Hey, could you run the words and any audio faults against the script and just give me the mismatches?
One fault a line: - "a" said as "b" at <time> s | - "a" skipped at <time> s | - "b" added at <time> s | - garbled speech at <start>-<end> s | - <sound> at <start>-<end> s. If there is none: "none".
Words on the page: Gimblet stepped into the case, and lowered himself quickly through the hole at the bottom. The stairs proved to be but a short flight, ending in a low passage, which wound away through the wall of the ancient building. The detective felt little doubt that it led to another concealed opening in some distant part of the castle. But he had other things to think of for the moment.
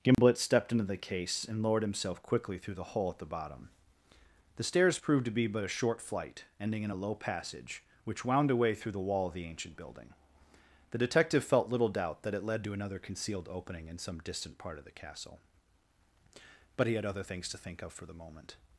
- dropout at 0.1-0.2 s